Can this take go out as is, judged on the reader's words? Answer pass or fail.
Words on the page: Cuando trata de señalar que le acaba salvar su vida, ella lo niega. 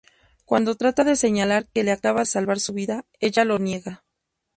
pass